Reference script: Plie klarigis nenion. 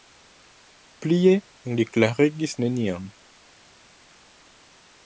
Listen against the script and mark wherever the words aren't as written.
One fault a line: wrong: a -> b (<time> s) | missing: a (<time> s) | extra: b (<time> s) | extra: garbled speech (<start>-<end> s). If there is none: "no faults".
extra: li (1.8 s)